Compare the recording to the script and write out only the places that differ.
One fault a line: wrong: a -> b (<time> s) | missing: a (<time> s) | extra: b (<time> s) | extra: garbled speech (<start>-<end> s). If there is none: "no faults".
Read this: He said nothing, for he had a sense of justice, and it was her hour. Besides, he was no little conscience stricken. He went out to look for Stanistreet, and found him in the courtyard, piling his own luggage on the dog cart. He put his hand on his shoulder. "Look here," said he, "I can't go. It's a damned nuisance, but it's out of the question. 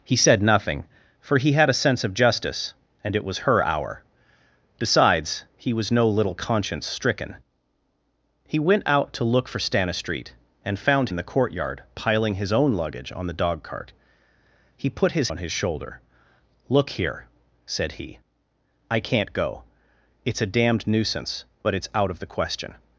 missing: him (11.1 s)
missing: hand (15.3 s)